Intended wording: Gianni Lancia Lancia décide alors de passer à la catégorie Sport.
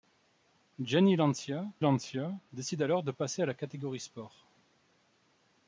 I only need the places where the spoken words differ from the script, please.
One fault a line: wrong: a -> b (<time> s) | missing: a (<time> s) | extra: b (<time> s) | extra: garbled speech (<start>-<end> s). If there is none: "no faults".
no faults